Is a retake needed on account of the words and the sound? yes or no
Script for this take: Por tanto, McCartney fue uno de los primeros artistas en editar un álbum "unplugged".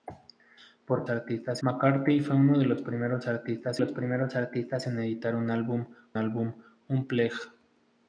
yes